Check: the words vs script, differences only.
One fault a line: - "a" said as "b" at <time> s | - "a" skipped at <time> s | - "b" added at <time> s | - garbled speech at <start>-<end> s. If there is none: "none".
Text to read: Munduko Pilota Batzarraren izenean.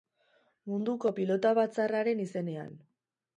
none